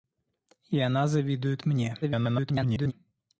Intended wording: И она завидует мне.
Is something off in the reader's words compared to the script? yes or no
yes